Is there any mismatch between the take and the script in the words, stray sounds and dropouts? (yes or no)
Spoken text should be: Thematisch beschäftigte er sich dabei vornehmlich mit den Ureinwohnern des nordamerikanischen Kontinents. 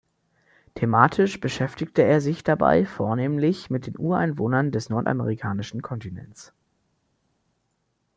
no